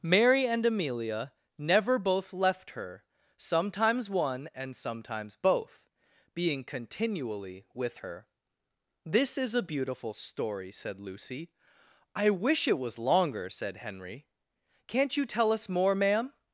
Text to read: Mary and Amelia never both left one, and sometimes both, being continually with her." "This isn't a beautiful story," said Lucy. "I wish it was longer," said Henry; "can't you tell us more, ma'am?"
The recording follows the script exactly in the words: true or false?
false